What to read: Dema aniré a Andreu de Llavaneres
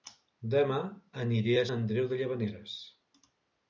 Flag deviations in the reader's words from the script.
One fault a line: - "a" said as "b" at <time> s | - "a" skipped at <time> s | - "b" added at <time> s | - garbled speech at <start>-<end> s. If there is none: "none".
none